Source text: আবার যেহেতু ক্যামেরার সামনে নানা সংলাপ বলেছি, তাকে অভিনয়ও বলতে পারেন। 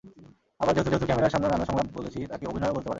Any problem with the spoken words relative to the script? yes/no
yes